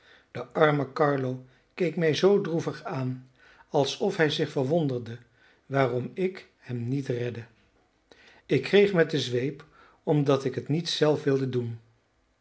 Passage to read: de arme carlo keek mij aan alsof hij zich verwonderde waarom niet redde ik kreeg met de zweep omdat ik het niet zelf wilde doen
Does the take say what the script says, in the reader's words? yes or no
no